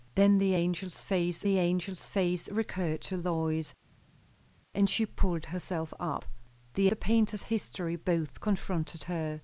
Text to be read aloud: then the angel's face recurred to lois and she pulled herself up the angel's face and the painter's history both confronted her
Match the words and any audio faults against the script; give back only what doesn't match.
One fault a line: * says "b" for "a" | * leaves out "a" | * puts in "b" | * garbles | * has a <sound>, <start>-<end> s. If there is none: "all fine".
* puts in "the angel's face"
* leaves out "angel's face and"